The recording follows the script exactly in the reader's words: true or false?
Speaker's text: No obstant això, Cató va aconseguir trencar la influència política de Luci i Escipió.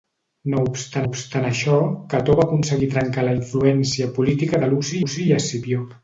false